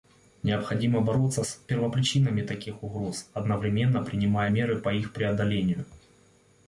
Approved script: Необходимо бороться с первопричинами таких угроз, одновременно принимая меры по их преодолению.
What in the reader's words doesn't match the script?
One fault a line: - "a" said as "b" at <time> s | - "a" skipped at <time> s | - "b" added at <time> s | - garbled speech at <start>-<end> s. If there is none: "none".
none